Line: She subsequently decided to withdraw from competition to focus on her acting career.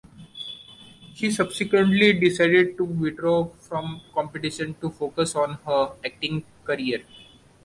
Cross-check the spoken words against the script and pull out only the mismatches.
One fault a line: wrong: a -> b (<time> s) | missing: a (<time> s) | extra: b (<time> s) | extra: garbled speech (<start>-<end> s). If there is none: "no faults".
no faults